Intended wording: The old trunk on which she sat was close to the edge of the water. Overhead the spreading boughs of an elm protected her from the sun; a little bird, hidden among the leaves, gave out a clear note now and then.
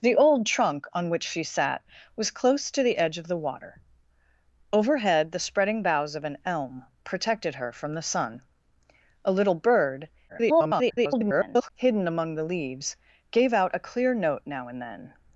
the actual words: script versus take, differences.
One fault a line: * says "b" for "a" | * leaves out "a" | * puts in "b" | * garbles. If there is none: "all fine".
* garbles